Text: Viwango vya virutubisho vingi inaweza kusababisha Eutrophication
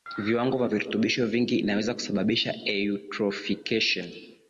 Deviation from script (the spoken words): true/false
false